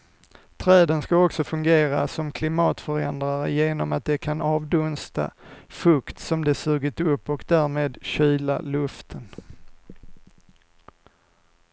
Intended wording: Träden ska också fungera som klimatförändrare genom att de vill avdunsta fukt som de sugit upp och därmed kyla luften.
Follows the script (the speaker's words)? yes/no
no